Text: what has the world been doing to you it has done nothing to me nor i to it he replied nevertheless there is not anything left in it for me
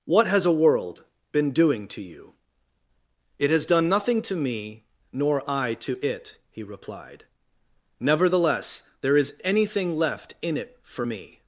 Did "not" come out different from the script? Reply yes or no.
yes